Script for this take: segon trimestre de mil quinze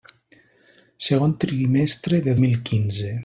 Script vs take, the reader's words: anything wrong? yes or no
no